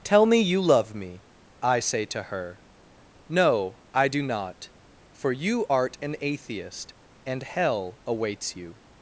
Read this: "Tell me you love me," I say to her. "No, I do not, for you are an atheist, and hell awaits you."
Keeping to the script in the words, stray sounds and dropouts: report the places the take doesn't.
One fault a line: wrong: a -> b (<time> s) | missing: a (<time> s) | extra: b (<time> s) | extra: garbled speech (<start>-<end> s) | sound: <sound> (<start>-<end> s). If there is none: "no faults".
wrong: are -> art (5.7 s)